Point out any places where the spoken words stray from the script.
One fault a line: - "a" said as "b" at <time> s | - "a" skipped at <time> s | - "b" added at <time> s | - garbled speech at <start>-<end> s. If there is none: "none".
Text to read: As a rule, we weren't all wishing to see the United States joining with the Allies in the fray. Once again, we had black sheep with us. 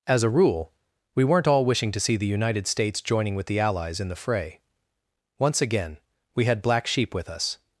none